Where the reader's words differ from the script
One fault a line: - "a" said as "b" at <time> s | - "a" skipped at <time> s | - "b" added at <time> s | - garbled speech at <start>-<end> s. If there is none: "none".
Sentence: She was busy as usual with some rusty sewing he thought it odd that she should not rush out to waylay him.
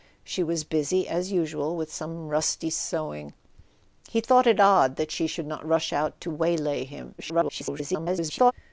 - garbled speech at 7.2-8.5 s